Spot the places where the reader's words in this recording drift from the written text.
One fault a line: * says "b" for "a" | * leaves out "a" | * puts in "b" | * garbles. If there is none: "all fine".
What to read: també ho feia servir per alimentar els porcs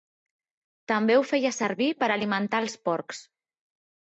all fine